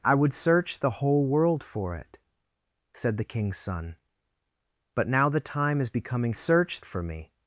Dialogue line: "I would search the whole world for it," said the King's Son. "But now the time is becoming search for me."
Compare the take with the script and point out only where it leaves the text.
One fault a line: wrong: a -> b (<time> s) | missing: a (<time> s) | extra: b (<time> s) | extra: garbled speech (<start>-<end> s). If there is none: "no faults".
no faults